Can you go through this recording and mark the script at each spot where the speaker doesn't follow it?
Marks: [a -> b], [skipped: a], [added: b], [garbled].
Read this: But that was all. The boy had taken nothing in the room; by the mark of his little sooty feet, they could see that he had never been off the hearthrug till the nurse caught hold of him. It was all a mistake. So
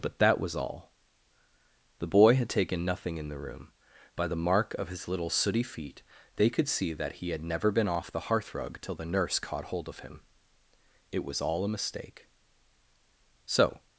But that was all. The boy had taken nothing in the room; by the mark of his little sooty feet, they could see that he had never been off the hearthrug till the nurse caught hold of him. It was all a mistake. So